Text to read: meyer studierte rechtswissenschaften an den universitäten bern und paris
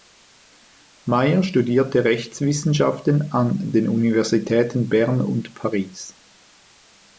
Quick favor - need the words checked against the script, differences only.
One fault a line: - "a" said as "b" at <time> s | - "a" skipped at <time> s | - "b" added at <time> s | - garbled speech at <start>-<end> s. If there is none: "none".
none